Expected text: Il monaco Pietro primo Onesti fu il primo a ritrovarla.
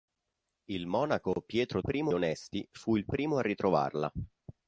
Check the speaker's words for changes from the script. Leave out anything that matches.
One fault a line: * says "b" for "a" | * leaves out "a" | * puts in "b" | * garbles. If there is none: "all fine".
all fine